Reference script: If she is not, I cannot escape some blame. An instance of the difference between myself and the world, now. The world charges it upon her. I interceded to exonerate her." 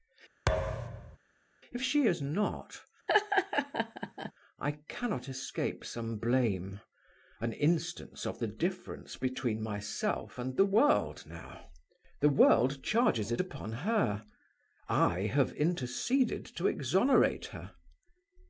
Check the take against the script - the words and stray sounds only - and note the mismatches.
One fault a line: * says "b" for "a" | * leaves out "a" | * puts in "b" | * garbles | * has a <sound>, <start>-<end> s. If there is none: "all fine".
* has a thud, 0.5-1.2 s
* has a laugh, 3.1-4.3 s
* puts in "have"